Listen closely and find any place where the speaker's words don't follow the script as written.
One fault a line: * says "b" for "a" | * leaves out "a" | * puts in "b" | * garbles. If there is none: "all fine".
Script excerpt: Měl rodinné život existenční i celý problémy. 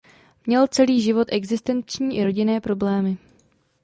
* says "celý" for "rodinné"
* says "rodinné" for "celý"